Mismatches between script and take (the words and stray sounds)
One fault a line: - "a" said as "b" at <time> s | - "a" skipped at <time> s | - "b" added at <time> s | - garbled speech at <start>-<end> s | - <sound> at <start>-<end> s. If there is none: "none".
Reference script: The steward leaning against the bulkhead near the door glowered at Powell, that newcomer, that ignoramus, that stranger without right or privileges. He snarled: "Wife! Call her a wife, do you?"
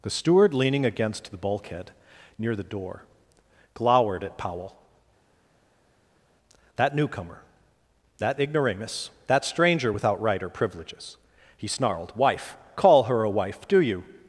none